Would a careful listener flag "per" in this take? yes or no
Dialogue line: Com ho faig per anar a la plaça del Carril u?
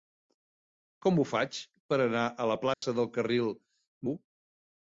no